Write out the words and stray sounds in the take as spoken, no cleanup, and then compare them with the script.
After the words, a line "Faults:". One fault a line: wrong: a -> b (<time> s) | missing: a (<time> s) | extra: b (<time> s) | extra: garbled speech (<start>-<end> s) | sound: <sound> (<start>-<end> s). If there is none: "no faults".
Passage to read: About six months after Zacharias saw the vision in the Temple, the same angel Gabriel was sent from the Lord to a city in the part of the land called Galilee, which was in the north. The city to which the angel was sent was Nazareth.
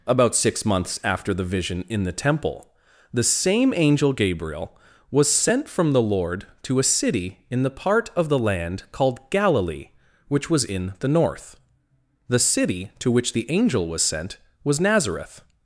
About six months after the vision in the Temple, the same angel Gabriel was sent from the Lord to a city in the part of the land called Galilee, which was in the north. The city to which the angel was sent was Nazareth.
Faults:
missing: Zacharias saw (1.3 s)